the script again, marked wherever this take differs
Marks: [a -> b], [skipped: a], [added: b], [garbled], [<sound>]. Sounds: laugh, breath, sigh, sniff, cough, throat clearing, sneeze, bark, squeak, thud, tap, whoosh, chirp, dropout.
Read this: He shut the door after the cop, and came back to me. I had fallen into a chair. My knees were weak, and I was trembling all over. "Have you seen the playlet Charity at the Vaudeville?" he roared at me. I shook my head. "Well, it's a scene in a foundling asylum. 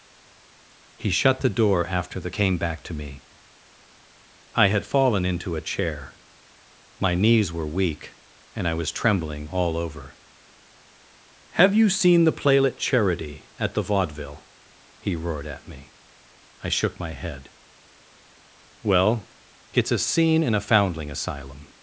He shut the door after the [skipped: cop, and] came back to me. I had fallen into a chair. My knees were weak, and I was trembling all over. "Have you seen the playlet Charity at the Vaudeville?" he roared at me. I shook my head. "Well, it's a scene in a foundling asylum.